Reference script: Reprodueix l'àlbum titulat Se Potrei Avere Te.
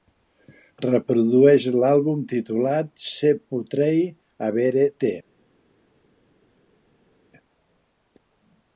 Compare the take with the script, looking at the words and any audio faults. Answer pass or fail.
pass